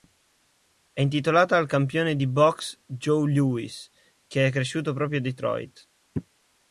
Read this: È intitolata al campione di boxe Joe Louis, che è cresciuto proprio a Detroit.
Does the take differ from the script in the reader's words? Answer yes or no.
no